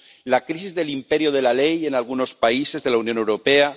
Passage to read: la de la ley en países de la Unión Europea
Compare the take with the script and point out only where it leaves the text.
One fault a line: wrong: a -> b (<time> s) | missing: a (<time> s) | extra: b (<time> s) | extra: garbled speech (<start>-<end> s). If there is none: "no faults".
extra: crisis del imperio (0.5 s)
extra: algunos (1.9 s)